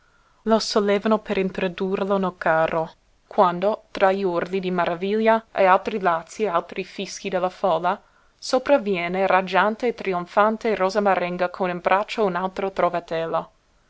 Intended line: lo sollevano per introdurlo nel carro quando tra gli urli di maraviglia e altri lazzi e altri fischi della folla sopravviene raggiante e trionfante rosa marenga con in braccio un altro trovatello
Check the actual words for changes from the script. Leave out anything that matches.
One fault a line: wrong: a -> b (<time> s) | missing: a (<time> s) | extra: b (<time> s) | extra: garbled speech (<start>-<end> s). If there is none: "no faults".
no faults